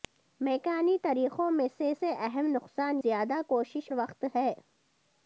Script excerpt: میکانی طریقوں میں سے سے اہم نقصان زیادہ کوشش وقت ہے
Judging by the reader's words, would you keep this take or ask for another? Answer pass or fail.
pass